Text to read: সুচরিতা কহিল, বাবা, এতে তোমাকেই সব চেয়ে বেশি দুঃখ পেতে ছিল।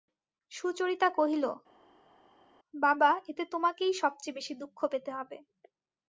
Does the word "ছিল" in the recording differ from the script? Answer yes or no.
yes